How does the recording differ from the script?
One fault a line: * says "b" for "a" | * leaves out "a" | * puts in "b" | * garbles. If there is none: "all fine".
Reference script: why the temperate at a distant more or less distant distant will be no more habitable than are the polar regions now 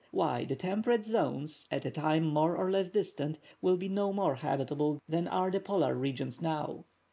* puts in "zones"
* says "time" for "distant"
* leaves out "distant"